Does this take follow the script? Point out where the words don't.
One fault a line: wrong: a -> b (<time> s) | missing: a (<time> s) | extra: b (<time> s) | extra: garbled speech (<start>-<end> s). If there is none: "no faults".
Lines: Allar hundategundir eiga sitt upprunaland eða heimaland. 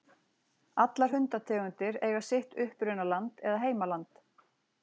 no faults